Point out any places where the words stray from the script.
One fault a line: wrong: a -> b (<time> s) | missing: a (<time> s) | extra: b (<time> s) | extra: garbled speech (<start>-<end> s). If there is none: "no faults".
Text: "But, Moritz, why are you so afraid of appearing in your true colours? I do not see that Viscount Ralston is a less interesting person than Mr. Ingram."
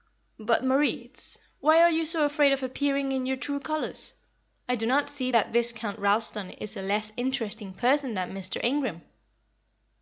no faults